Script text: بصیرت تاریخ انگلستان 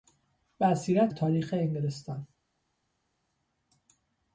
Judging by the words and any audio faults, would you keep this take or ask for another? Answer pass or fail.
pass